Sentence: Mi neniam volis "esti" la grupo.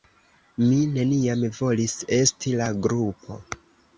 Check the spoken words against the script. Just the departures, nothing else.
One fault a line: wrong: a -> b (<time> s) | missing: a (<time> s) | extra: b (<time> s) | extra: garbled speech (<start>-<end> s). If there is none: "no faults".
no faults